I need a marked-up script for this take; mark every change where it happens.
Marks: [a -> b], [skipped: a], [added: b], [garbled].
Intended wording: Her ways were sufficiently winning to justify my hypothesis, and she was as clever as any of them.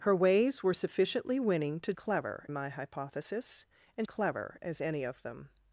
Her ways were sufficiently winning to [justify -> clever] my hypothesis, and [skipped: she was as] clever as any of them.